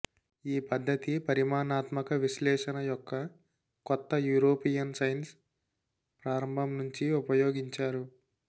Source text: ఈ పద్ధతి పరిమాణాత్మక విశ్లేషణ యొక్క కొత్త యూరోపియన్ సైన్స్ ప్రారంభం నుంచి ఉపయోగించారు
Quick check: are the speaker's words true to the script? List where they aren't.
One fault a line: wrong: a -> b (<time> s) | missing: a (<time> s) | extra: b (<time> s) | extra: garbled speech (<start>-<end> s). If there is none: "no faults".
no faults